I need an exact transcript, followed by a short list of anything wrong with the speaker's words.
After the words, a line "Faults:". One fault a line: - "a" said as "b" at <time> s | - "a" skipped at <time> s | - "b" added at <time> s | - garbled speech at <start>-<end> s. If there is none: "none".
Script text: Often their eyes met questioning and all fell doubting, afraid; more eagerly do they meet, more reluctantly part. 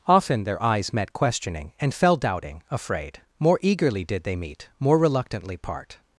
Often their eyes met questioning and fell doubting, afraid; more eagerly did they meet, more reluctantly part.
Faults:
- "all" skipped at 1.9 s
- "do" said as "did" at 4.0 s